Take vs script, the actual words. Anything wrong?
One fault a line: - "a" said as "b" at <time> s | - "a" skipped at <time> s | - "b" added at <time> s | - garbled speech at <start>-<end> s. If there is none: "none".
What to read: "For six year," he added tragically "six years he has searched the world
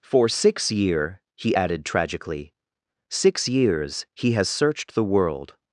none